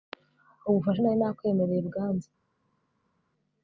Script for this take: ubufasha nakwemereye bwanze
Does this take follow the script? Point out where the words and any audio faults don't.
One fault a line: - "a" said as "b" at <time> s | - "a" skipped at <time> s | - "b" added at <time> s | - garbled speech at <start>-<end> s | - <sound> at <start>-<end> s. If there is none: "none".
- "nari" added at 1.0 s